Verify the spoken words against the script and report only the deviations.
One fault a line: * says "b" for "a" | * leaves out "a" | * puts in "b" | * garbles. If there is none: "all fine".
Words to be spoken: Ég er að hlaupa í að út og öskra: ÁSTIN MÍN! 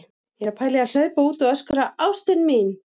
* says "pæla" for "hlaupa"
* puts in "hlaupa"